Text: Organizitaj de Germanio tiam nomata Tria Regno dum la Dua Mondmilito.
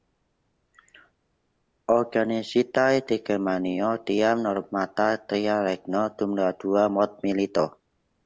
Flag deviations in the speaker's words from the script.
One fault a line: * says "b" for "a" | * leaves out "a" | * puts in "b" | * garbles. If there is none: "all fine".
all fine